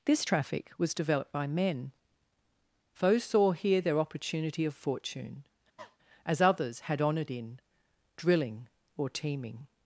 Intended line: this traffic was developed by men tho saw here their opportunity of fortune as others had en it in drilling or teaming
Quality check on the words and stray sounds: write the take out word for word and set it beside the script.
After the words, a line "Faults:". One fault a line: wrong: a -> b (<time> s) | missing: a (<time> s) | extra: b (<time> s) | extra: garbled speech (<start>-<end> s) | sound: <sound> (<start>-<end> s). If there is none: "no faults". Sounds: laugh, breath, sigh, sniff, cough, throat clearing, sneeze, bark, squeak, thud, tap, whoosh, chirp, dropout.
this traffic was developed by men foes saw here their opportunity of fortune as others had honoured in drilling or teaming
Faults:
wrong: tho -> foes (2.9 s)
sound: cough (5.8-6.0 s)
wrong: en it -> honoured (7.0 s)